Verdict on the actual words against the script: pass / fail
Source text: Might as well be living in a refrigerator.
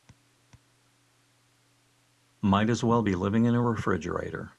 pass